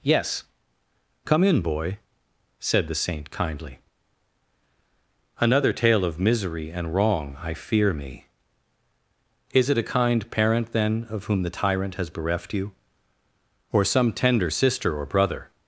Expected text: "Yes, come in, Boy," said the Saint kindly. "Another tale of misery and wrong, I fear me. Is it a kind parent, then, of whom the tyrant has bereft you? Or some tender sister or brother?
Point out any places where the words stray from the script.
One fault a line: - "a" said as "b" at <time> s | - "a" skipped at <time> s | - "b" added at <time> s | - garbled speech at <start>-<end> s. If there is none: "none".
none